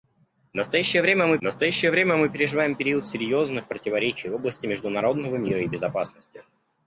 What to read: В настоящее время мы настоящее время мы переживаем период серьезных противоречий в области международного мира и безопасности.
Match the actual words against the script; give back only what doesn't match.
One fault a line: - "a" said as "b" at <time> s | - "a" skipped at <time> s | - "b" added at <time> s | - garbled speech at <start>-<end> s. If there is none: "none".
none